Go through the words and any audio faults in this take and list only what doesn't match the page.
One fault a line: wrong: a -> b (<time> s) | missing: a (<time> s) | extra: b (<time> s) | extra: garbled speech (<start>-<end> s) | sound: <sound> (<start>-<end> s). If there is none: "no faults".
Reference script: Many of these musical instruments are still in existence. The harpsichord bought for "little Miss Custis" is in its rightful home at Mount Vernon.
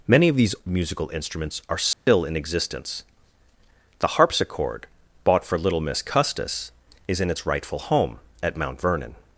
sound: dropout (1.9-2.1 s)